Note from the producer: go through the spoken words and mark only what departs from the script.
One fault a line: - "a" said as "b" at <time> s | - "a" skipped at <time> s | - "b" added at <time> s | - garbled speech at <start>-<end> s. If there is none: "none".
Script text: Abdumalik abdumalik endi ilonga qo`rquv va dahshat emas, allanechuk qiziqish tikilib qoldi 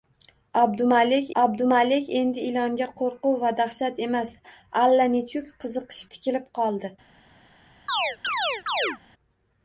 none